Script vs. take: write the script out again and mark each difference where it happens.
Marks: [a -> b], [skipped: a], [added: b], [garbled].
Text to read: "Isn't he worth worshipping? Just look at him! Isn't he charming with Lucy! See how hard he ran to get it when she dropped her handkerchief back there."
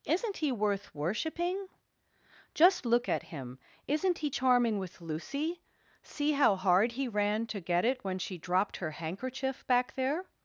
"Isn't he worth worshipping? Just look at him! Isn't he charming with Lucy! See how hard he ran to get it when she dropped her handkerchief back there."